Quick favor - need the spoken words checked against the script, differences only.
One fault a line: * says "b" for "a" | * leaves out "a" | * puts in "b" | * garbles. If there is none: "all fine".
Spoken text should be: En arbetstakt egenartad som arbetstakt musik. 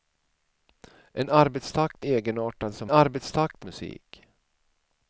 all fine